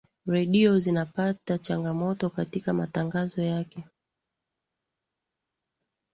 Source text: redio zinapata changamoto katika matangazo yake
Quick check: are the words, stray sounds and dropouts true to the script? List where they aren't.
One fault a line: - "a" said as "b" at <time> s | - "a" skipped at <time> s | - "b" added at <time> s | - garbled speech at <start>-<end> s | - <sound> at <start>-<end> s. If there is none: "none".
none